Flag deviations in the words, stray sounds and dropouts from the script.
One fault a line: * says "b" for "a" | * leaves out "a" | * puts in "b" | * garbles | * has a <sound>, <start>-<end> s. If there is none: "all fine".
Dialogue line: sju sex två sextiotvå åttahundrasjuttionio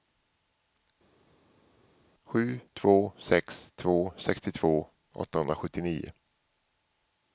* puts in "två"